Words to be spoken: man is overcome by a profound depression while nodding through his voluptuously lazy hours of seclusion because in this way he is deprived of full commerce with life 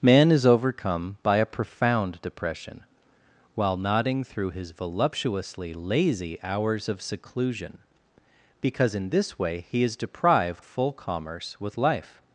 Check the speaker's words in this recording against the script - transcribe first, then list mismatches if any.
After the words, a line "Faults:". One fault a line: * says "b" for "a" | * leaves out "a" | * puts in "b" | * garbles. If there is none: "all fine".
man is overcome by a profound depression while nodding through his voluptuously lazy hours of seclusion because in this way he is deprived full commerce with life
Faults:
* leaves out "of"